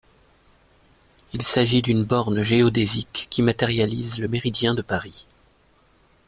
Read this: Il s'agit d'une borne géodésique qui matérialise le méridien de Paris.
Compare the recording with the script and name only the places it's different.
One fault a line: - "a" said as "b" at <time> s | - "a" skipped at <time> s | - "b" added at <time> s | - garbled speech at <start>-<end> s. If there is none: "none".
none